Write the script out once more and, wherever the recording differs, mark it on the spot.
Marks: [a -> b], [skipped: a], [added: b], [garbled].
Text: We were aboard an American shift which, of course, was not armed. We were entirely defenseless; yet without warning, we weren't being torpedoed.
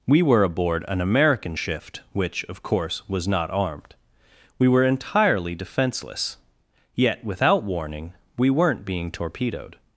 We were aboard an American shift which, of course, was not armed. We were entirely defenseless; yet without warning, we weren't being torpedoed.